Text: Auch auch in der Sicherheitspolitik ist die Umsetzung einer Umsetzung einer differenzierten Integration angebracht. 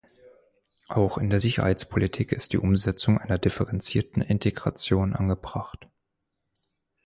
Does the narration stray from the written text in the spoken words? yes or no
yes